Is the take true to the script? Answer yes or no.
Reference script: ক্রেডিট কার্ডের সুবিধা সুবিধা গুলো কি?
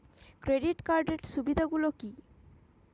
no